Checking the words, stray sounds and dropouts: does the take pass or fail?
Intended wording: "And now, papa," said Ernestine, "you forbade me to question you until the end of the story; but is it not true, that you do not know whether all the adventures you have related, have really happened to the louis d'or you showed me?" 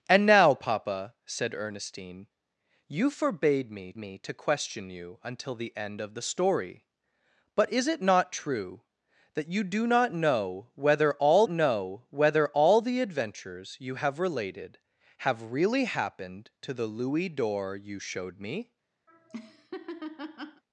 fail